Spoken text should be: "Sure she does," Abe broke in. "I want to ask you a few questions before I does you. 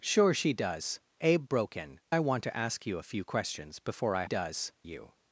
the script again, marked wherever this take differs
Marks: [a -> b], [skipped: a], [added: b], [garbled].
"Sure she does," Abe broke in. "I want to ask you a few questions before I does you.